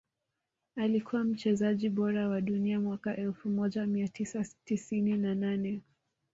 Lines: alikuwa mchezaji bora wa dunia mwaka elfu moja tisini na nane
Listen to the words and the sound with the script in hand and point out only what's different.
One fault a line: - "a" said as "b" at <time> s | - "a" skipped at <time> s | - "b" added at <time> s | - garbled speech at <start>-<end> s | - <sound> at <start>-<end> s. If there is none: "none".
- "mia tisa" added at 3.9 s